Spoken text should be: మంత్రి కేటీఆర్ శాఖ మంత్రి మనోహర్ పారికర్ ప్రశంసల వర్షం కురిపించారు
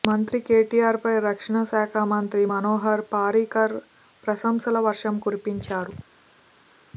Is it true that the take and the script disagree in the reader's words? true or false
true